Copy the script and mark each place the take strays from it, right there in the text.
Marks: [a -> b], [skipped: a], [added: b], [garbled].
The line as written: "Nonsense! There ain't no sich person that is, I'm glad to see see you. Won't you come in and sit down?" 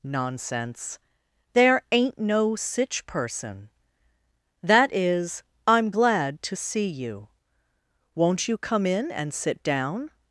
"Nonsense! There ain't no sich person that is, I'm glad to see [skipped: see] you. Won't you come in and sit down?"